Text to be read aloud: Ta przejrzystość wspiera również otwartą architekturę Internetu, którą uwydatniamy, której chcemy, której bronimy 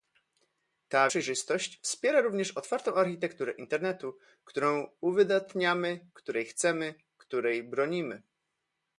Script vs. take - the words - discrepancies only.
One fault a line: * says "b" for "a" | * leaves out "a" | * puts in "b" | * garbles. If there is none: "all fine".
all fine